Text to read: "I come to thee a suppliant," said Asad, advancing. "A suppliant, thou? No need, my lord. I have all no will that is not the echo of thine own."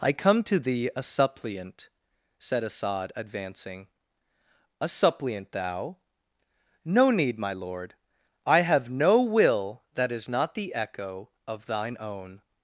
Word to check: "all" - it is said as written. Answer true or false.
false